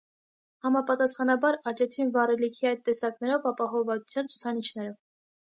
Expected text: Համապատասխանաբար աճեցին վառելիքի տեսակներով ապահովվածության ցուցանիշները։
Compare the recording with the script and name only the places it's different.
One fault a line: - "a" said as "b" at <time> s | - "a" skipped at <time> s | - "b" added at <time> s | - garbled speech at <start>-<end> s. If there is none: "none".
- "այդ" added at 2.7 s